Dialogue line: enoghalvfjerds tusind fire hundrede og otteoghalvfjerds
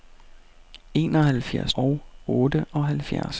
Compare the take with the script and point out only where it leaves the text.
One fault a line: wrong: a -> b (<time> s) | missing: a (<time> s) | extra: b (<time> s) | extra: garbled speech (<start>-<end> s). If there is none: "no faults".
missing: tusind fire hundrede (1.7 s)